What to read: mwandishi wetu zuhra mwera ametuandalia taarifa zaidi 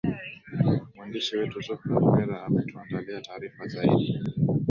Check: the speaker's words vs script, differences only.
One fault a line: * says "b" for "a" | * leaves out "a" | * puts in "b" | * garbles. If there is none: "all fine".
all fine